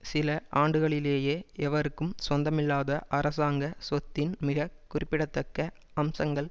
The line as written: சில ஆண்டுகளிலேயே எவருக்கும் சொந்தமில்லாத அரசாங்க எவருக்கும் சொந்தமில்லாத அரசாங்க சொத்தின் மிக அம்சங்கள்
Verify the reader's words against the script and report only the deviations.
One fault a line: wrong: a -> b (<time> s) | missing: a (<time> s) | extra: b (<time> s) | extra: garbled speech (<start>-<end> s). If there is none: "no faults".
missing: எவருக்கும் சொந்தமில்லாத அரசாங்க (3.7 s)
extra: குறிப்பிடத்தக்க (4.9 s)